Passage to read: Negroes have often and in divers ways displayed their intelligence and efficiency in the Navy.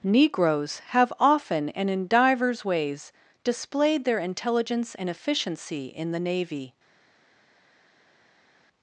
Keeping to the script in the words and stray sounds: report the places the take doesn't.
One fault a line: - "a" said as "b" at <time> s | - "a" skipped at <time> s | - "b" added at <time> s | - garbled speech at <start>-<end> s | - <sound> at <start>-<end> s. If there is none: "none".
none